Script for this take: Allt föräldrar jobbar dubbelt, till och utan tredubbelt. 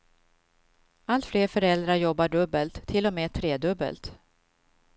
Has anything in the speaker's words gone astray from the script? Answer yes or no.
yes